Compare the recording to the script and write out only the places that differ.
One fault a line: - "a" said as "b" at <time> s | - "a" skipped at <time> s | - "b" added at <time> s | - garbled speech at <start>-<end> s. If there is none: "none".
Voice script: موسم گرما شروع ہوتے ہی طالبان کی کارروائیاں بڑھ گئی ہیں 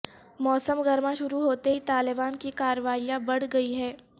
none